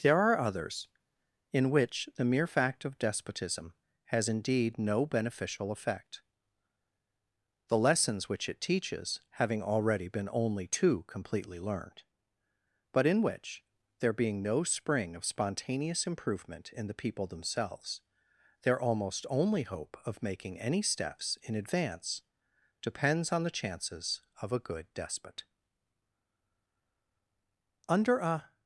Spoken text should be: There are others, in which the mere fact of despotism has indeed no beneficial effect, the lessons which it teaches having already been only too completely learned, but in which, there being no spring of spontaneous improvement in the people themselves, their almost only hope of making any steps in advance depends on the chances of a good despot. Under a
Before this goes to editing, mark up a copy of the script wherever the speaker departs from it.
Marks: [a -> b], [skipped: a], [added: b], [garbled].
There are others, in which the mere fact of despotism has indeed no beneficial effect, the lessons which it teaches having already been only too completely learned, but in which, there being no spring of spontaneous improvement in the people themselves, their almost only hope of making any steps in advance depends on the chances of a good despot. Under a